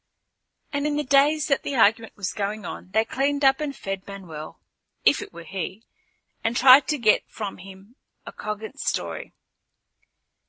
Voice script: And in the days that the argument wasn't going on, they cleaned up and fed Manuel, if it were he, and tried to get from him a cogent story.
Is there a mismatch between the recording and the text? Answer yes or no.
yes